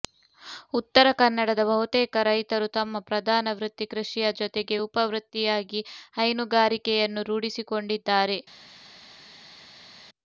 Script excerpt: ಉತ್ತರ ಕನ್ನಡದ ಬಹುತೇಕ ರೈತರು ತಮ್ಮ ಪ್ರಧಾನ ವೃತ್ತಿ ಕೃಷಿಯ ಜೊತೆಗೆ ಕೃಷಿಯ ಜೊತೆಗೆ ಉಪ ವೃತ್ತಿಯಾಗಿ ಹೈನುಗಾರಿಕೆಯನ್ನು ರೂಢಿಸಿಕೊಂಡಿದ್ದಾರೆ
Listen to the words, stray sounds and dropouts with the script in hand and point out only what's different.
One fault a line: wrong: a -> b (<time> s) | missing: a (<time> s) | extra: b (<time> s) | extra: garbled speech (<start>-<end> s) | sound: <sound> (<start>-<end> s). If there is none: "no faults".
missing: ಕೃಷಿಯ ಜೊತೆಗೆ (4.8 s)